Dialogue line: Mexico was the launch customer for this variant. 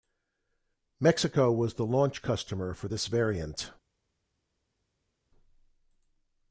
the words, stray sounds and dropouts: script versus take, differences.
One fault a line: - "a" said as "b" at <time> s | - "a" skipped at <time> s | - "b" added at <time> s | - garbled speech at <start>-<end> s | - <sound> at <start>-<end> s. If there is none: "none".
none